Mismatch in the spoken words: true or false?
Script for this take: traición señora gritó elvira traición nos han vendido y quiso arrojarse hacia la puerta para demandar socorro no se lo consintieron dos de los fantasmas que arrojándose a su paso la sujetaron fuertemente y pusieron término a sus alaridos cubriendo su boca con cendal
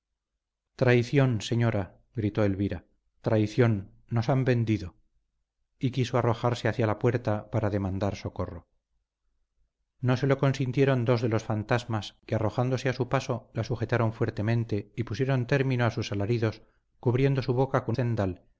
false